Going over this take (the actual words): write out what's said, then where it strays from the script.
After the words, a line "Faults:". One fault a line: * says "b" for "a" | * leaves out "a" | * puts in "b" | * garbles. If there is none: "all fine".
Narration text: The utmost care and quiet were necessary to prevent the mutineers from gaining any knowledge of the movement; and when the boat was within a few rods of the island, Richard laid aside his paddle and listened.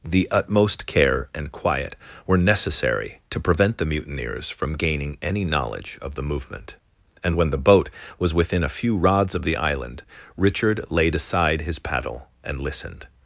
The utmost care and quiet were necessary to prevent the mutineers from gaining any knowledge of the movement; and when the boat was within a few rods of the island, Richard laid aside his paddle and listened.
Faults:
all fine